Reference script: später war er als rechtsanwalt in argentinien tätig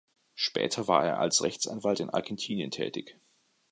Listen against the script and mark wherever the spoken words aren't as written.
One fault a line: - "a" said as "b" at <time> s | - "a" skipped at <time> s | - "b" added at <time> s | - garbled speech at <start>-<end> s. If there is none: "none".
none